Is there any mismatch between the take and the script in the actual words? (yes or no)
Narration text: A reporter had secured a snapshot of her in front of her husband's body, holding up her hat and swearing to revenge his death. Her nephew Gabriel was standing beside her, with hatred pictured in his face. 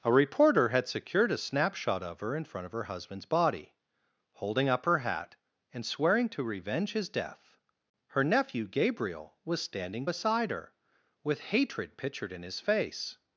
no